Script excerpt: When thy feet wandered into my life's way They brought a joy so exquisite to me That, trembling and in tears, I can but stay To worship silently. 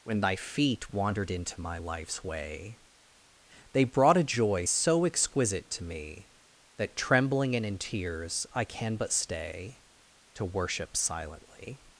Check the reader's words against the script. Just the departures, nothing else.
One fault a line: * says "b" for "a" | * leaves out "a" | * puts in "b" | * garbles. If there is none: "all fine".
all fine